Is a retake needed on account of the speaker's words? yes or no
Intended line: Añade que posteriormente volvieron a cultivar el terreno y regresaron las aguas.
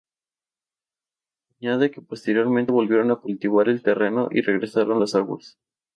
no